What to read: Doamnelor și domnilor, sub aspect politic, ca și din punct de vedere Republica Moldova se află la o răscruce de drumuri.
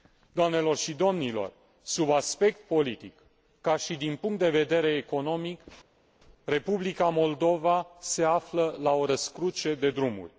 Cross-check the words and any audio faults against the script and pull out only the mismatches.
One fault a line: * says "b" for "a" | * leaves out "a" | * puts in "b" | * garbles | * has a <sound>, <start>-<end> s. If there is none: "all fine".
* puts in "economic"